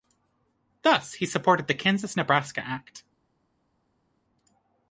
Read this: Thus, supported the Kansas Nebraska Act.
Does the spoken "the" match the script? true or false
true